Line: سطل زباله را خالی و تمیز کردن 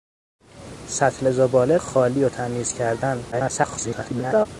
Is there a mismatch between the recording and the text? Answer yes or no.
yes